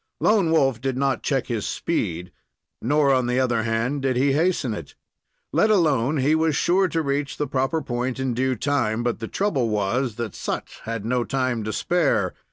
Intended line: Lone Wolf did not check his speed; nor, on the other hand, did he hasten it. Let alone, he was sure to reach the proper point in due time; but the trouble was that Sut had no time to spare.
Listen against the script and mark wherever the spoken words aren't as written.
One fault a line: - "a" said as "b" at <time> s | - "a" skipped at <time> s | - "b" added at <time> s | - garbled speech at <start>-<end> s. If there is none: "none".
none